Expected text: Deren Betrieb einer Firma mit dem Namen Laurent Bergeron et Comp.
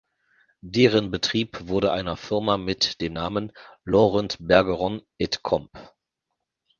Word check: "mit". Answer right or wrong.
right